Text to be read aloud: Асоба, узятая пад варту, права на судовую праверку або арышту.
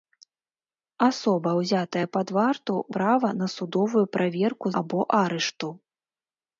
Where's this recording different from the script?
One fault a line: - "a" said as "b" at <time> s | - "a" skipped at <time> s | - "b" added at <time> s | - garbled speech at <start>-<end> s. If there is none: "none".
none